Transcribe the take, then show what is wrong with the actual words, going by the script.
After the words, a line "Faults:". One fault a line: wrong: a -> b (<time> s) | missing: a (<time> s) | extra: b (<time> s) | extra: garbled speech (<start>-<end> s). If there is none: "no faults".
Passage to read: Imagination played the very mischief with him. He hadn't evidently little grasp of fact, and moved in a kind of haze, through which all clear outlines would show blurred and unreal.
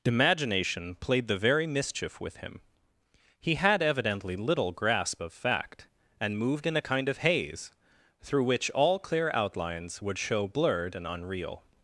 Imagination played the very mischief with him. He had evidently little grasp of fact, and moved in a kind of haze, through which all clear outlines would show blurred and unreal.
Faults:
wrong: hadn't -> had (3.5 s)